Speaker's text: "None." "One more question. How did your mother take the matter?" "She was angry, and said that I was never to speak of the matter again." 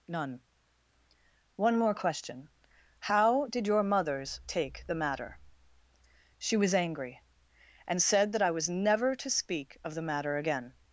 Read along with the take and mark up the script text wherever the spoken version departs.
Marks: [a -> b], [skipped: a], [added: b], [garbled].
"None." "One more question. How did your [mother -> mothers] take the matter?" "She was angry, and said that I was never to speak of the matter again."